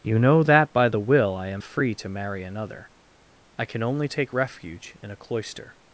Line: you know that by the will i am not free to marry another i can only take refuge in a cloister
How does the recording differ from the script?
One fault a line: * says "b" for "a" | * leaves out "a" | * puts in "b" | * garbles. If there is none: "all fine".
* leaves out "not"